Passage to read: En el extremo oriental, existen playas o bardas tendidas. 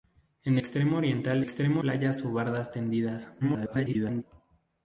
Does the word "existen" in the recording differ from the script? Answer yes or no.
yes